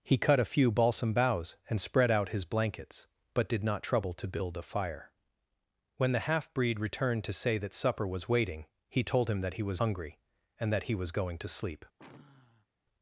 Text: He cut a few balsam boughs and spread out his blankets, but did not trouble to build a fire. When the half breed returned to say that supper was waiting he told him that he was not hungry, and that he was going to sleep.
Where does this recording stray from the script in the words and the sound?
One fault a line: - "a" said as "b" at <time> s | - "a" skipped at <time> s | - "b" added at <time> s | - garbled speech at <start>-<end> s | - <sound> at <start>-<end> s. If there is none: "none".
- "not" skipped at 9.8 s
- sigh at 12.0-12.7 s